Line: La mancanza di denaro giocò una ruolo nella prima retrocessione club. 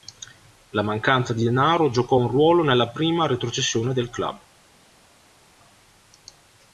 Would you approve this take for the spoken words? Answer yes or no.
no